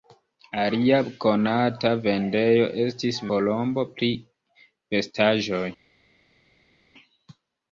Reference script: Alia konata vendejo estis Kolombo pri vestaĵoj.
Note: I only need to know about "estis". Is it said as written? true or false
true